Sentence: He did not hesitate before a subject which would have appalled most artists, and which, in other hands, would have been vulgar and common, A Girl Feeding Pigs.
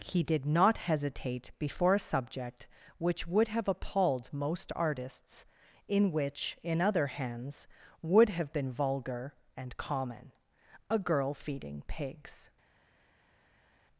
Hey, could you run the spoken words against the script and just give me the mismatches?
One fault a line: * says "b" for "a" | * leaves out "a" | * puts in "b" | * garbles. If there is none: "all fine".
* says "in" for "and"